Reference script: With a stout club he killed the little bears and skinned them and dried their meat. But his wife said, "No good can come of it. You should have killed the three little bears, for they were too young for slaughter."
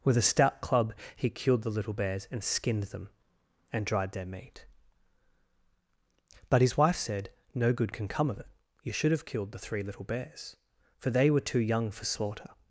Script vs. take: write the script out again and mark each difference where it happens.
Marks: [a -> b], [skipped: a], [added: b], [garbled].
With a stout club he killed the little bears and skinned them and dried their meat. But his wife said, "No good can come of it. You should have killed the three little bears, for they were too young for slaughter."